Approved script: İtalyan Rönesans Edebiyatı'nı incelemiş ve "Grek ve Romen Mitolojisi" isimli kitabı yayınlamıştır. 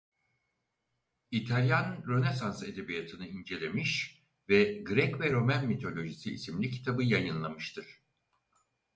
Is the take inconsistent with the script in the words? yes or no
no